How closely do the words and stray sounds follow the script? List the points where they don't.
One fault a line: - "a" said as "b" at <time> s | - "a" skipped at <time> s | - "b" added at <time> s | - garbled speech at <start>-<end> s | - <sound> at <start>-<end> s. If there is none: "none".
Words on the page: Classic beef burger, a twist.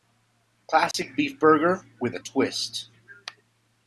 - dropout at 0.9-0.9 s
- "with" added at 2.0 s